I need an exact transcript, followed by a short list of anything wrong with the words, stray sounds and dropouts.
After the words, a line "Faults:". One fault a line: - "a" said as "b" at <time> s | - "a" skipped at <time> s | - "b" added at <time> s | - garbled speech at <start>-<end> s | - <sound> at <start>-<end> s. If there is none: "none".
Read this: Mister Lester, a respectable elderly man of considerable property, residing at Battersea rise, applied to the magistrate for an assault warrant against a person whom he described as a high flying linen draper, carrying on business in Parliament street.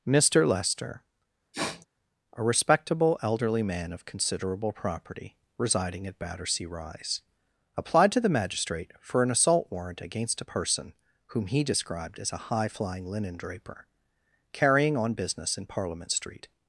Mister Lester, a respectable elderly man of considerable property, residing at Battersea rise, applied to the magistrate for an assault warrant against a person whom he described as a high flying linen draper, carrying on business in Parliament street.
Faults:
- sniff at 1.5-1.9 s